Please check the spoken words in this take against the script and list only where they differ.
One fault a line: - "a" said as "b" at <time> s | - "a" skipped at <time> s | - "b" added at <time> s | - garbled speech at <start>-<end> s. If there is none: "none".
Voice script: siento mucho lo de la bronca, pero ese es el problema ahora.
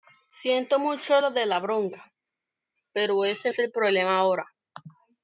none